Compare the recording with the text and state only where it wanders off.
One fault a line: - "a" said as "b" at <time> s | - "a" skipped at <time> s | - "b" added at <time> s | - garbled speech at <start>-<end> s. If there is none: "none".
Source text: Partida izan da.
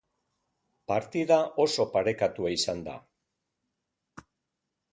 - "oso parekatua" added at 1.6 s